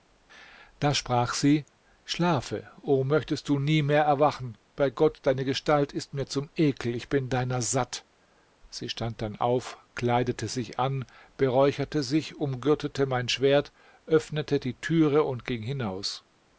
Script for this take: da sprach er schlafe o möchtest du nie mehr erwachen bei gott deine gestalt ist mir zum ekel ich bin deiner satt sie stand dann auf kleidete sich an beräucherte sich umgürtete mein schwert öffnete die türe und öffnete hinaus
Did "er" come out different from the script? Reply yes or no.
yes